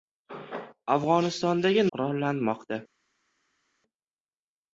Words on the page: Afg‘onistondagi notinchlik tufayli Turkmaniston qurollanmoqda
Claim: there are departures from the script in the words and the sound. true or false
true